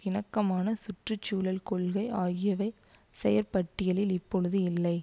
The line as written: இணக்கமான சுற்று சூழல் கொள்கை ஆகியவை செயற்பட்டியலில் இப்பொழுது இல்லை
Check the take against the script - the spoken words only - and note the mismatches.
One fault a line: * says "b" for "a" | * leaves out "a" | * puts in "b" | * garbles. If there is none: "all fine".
all fine